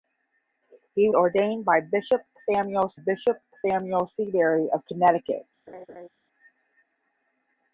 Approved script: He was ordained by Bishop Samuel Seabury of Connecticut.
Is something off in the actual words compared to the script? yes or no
yes